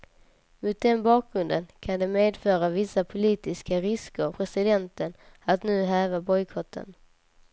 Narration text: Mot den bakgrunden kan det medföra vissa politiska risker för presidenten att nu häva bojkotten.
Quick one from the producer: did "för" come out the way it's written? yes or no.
no